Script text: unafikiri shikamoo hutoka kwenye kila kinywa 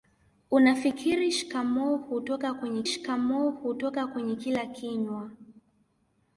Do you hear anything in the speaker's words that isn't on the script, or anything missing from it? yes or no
yes